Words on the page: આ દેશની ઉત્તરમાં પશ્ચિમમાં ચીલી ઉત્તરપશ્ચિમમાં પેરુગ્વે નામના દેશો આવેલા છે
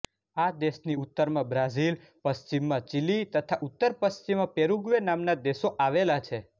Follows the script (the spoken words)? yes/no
no